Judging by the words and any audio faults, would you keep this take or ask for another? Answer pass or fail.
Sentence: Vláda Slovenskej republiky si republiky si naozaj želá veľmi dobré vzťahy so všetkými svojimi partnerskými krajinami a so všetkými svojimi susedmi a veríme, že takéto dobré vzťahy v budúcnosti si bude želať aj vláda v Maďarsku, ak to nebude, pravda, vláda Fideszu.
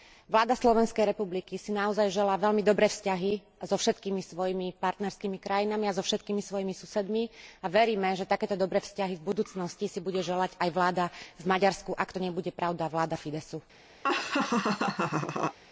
fail